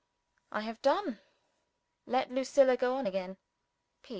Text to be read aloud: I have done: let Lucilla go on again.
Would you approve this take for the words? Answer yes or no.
yes